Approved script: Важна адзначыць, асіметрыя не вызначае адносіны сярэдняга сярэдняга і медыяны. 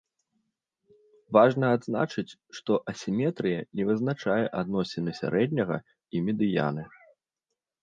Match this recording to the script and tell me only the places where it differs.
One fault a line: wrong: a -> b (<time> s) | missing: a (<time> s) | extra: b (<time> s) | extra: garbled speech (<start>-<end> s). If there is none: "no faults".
extra: што (2.6 s)
missing: сярэдняга (5.8 s)